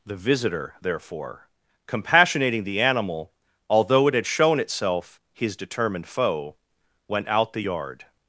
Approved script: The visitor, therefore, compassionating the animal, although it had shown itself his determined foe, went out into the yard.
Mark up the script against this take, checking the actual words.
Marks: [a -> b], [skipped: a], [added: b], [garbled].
The visitor, therefore, compassionating the animal, although it had shown itself his determined foe, went out [skipped: into] the yard.